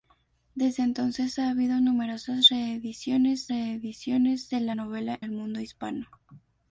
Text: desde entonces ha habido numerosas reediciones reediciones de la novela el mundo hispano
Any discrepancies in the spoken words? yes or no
no